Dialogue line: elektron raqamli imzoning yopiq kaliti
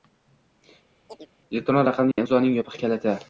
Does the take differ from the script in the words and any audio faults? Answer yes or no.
yes